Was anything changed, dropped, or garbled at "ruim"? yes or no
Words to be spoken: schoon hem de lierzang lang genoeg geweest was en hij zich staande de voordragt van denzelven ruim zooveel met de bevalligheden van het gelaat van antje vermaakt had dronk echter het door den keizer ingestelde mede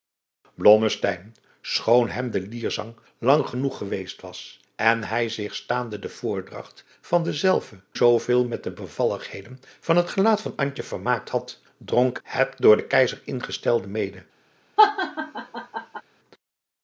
yes